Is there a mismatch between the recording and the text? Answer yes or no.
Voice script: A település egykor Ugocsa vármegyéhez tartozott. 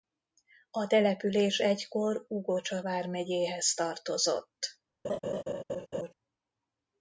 no